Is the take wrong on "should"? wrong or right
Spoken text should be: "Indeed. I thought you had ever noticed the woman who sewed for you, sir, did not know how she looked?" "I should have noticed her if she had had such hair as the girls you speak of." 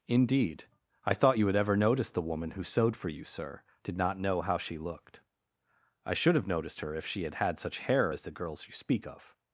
right